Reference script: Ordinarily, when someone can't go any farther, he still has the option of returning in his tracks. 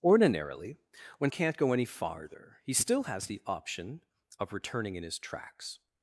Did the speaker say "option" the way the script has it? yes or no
yes